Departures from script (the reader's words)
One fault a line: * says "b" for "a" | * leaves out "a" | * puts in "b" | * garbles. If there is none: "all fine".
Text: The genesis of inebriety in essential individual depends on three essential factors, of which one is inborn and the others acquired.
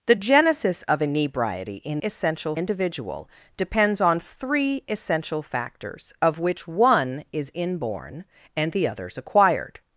all fine